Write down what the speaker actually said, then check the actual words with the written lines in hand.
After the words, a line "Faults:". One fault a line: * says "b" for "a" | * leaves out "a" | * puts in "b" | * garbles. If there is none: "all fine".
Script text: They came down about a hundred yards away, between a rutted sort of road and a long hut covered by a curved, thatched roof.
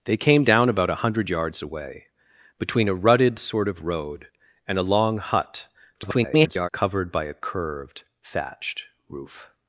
They came down about a hundred yards away, between a rutted sort of road and a long hut [garbled] covered by a curved, thatched roof.
Faults:
* garbles